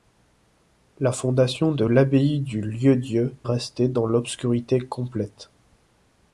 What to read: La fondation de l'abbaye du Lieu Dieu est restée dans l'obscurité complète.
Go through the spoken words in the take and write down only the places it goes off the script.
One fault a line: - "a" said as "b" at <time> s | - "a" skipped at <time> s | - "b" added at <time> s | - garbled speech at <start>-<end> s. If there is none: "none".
- "est" skipped at 3.3 s